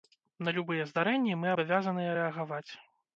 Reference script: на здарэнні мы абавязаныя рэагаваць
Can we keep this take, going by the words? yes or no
no